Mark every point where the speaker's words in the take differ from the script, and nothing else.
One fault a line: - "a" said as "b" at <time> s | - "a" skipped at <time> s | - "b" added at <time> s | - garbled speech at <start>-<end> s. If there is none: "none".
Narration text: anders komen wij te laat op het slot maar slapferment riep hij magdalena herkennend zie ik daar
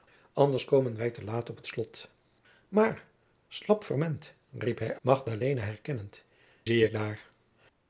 none